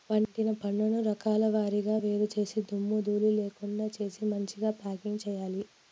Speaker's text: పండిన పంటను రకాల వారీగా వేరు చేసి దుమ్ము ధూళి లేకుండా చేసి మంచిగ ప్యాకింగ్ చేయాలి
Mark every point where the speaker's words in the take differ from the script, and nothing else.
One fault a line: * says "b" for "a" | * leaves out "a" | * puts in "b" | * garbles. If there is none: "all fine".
all fine